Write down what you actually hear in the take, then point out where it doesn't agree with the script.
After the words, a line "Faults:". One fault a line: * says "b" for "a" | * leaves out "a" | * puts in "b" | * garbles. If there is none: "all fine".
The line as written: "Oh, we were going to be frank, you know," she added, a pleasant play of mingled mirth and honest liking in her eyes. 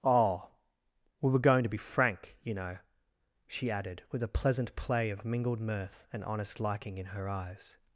"Oh, we were going to be frank, you know," she added, with a pleasant play of mingled mirth and honest liking in her eyes.
Faults:
* puts in "with"